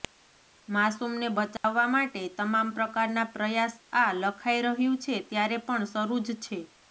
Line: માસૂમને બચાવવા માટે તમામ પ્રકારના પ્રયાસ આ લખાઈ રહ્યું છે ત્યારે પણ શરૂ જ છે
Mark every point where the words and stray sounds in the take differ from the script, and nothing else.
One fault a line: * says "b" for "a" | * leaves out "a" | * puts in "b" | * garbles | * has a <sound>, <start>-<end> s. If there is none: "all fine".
* has a dropout, 1.6-1.6 s